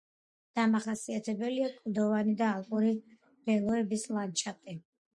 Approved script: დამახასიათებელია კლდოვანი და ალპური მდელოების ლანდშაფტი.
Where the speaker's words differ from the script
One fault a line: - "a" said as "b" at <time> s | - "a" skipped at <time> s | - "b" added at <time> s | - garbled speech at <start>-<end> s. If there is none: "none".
none